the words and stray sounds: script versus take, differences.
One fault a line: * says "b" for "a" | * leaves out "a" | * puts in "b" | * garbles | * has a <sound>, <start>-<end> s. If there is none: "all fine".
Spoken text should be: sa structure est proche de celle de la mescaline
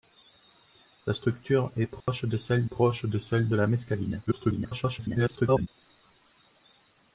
* has a dropout, 2.0-2.1 s
* puts in "proche de celle"
* garbles